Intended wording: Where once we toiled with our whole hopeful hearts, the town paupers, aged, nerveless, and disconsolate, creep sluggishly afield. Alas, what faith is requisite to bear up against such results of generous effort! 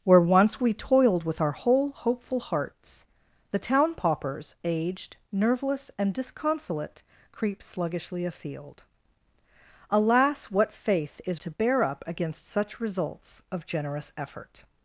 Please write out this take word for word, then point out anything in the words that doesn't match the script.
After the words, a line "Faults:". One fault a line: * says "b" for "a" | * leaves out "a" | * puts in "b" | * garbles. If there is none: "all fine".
Where once we toiled with our whole hopeful hearts, the town paupers, aged, nerveless, and disconsolate, creep sluggishly afield. Alas, what faith is to bear up against such results of generous effort!
Faults:
* leaves out "requisite"